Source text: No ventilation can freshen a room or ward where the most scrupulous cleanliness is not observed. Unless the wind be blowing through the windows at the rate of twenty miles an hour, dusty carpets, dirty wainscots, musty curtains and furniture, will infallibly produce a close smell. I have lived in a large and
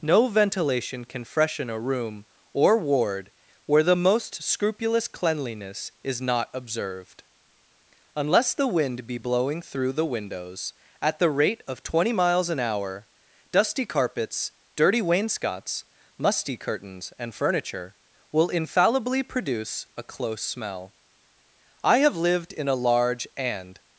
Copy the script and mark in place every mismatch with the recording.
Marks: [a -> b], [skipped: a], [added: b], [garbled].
No ventilation can freshen a room or ward where the most scrupulous cleanliness is not observed. Unless the wind be blowing through the windows at the rate of twenty miles an hour, dusty carpets, dirty wainscots, musty curtains and furniture, will infallibly produce a close smell. I have lived in a large and